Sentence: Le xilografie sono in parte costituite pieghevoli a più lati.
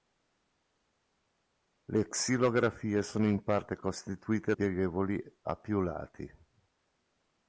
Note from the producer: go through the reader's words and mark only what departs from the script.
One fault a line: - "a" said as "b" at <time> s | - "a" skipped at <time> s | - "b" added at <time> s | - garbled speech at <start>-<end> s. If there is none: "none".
none